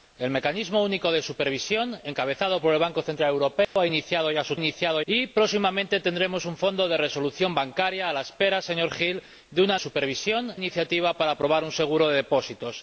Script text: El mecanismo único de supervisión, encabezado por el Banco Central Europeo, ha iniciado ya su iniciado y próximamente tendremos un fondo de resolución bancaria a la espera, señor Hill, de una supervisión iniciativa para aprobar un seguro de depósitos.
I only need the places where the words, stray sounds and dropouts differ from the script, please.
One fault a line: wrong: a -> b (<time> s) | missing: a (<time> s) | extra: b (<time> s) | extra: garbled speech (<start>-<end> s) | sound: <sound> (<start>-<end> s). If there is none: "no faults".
sound: dropout (3.6-3.8 s)